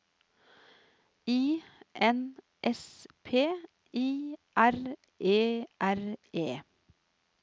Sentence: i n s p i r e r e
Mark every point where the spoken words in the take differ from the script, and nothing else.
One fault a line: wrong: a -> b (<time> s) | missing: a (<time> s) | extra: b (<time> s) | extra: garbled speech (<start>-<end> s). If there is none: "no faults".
no faults